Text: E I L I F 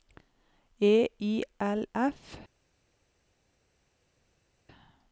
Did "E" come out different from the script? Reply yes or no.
no